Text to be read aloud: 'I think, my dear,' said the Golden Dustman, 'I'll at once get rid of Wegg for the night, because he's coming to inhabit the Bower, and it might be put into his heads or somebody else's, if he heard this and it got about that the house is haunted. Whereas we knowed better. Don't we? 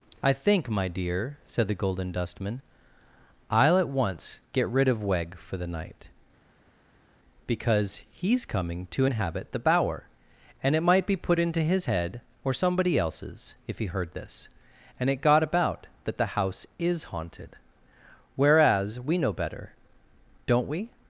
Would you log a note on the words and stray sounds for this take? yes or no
yes